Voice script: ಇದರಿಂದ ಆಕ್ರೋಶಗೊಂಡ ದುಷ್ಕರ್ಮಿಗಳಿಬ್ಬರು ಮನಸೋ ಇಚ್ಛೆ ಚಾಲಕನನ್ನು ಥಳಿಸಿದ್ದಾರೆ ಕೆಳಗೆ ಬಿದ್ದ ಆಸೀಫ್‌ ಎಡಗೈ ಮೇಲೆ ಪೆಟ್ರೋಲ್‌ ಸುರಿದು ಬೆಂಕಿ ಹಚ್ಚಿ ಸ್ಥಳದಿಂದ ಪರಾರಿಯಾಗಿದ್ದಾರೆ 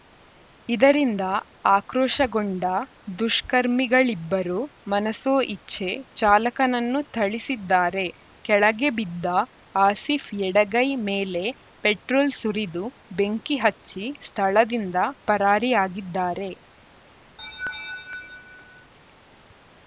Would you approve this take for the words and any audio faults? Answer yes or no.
no